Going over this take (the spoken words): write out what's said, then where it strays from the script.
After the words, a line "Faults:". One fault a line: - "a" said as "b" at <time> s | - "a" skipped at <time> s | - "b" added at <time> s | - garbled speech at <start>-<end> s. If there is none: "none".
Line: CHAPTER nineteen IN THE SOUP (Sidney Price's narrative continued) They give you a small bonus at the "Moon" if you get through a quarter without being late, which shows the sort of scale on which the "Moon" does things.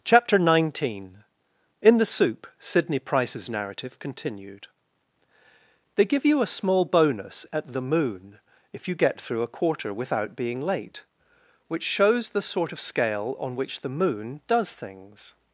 CHAPTER nineteen IN THE SOUP (Sidney Price's narrative continued) They give you a small bonus at the "Moon" if you get through a quarter without being late, which shows the sort of scale on which the "Moon" does things.
Faults:
none